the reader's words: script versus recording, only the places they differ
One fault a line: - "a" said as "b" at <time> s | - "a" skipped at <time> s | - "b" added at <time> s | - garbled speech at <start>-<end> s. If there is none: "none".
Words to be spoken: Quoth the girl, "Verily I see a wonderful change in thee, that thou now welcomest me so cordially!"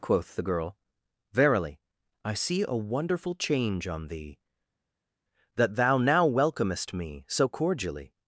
- "in" said as "on" at 3.9 s